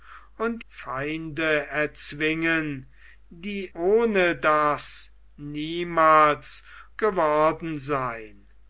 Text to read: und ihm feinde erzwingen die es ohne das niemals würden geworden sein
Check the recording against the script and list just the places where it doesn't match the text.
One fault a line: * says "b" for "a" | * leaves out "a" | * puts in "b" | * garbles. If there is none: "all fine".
* leaves out "ihm"
* leaves out "es"
* leaves out "würden"